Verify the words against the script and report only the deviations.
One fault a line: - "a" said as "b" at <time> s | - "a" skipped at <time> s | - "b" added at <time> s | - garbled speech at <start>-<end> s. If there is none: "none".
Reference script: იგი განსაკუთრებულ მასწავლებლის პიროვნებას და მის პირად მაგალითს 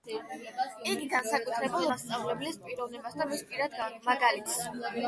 none